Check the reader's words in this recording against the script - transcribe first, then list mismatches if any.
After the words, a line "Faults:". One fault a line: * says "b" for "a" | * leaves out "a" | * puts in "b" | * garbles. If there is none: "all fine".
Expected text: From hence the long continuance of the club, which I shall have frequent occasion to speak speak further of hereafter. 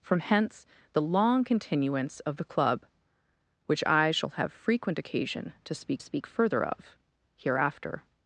From hence the long continuance of the club, which I shall have frequent occasion to speak speak further of hereafter.
Faults:
all fine